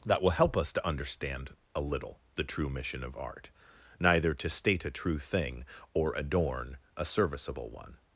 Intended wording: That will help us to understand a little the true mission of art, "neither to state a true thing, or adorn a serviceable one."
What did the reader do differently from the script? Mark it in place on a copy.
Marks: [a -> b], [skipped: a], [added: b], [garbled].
That will help us to understand a little the true mission of art, "neither to state a true thing, or adorn a serviceable one."